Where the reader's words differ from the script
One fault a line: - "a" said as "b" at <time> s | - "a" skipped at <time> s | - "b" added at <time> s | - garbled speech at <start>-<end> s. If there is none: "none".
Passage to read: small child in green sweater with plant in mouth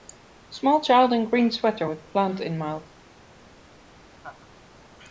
none